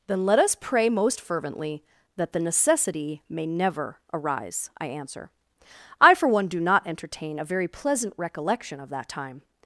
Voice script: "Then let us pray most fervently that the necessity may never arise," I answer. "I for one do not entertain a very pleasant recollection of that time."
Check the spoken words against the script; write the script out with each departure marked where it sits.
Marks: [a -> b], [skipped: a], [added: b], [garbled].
"Then let us pray most fervently that the necessity may never arise," I answer. "I for one do not entertain a very pleasant recollection of that time."